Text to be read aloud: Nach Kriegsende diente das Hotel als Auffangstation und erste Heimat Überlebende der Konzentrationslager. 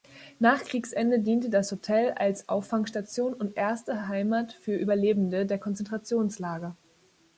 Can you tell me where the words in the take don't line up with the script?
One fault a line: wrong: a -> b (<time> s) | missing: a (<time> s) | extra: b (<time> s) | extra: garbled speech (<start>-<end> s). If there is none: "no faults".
extra: für (4.5 s)